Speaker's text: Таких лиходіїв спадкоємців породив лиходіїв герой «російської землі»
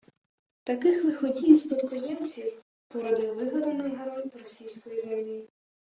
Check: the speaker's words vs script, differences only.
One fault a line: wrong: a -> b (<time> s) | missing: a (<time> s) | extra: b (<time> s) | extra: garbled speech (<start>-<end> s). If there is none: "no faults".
wrong: лиходіїв -> вигаданий (3.4 s)